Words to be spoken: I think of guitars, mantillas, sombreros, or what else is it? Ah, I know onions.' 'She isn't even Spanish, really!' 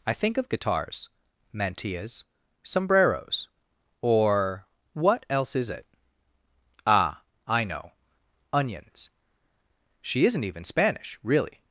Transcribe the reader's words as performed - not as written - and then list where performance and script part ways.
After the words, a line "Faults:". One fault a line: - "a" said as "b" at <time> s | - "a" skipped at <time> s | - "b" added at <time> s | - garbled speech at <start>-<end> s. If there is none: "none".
I think of guitars, mantillas, sombreros, or what else is it? Ah, I know onions.' 'She isn't even Spanish, really!'
Faults:
none